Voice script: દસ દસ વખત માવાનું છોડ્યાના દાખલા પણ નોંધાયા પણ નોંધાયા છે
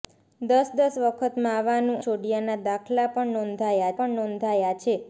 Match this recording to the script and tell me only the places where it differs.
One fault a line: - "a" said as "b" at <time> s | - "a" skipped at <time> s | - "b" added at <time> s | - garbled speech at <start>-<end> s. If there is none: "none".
none